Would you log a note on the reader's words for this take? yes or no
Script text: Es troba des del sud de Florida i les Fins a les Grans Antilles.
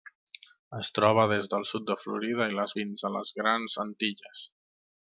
no